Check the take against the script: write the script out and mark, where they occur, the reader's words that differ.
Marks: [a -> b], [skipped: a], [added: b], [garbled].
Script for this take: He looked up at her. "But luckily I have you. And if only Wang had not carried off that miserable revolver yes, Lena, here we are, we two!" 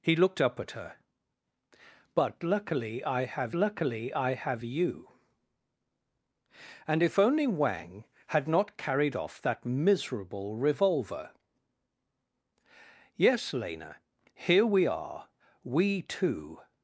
He looked up at her. "But luckily I have [added: luckily I have] you. And if only Wang had not carried off that miserable revolver yes, Lena, here we are, we two!"